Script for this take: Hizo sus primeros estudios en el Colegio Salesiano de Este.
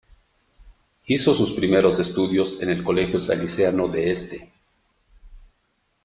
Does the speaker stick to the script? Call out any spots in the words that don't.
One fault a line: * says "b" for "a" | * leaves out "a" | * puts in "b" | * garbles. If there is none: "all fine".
all fine